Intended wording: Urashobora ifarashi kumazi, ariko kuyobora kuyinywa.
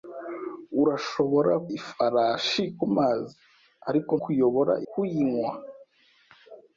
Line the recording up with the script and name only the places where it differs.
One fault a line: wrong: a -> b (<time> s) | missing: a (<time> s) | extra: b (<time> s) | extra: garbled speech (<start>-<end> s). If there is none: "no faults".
no faults